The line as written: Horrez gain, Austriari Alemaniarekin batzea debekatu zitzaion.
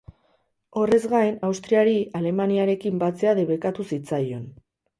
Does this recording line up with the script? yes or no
yes